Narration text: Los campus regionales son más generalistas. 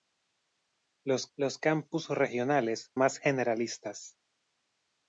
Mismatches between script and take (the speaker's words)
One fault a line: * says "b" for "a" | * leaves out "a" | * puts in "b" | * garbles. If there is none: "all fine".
* puts in "los"
* leaves out "son"